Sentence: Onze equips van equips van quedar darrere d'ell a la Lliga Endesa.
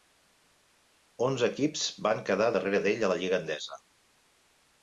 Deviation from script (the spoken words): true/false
true